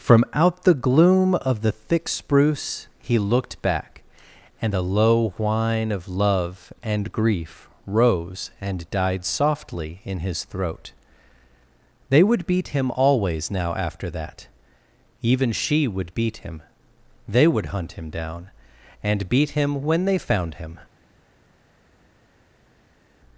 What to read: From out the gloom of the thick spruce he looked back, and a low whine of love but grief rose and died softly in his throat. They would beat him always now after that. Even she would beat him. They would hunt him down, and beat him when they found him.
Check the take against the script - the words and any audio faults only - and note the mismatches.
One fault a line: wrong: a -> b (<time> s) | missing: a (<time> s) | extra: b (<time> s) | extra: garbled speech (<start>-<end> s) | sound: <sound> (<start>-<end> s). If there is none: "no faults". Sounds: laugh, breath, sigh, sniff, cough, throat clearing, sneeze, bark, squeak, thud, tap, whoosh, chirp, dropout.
wrong: but -> and (6.8 s)